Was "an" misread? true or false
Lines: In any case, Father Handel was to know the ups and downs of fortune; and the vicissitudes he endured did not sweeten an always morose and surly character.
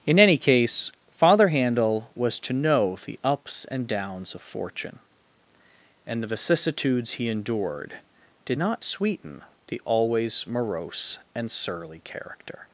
true